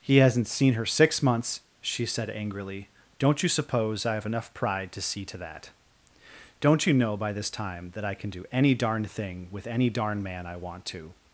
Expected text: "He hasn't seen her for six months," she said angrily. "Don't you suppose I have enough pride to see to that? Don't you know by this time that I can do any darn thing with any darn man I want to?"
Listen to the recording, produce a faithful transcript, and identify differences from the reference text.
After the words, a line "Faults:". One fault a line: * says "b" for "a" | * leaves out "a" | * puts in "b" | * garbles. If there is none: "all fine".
"He hasn't seen her six months," she said angrily. "Don't you suppose I have enough pride to see to that? Don't you know by this time that I can do any darn thing with any darn man I want to?"
Faults:
* leaves out "for"